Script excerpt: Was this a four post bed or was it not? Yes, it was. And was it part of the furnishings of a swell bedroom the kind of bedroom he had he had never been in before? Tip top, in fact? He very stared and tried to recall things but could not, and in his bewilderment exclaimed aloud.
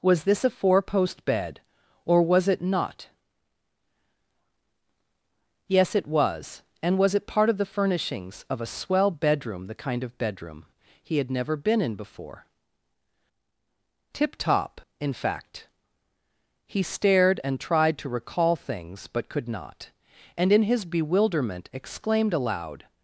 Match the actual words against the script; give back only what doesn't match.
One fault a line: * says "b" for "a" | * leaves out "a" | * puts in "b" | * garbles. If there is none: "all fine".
* leaves out "he had"
* leaves out "very"